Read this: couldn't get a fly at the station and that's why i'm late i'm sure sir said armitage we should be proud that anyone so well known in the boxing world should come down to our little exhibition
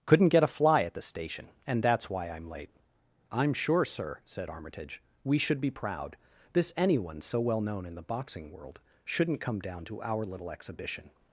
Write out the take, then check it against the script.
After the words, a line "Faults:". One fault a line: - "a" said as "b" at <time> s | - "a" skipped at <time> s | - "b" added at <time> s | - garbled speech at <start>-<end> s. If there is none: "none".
couldn't get a fly at the station and that's why i'm late i'm sure sir said armitage we should be proud this anyone so well known in the boxing world shouldn't come down to our little exhibition
Faults:
- "that" said as "this" at 6.5 s
- "should" said as "shouldn't" at 9.0 s